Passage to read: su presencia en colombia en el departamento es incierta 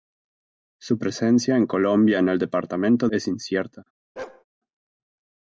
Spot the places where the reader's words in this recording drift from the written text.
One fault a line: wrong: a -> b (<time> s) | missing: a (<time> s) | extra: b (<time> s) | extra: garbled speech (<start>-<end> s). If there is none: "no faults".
no faults